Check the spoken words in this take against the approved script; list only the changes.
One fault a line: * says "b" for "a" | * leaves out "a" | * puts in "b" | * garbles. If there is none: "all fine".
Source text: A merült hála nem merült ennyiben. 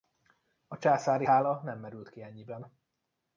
* says "császári" for "merült"
* puts in "ki"